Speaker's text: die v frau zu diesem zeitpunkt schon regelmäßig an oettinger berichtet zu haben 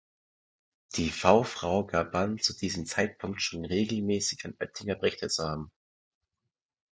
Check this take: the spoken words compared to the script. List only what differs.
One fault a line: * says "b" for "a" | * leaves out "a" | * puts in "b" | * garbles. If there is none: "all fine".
* puts in "gab an"